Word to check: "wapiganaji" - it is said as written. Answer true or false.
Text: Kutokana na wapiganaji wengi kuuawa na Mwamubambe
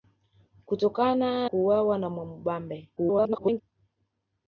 false